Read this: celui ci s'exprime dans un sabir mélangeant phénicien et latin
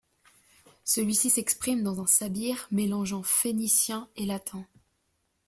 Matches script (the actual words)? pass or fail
pass